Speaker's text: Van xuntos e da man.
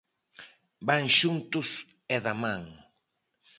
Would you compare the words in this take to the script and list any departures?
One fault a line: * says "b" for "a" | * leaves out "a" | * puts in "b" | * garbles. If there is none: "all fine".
all fine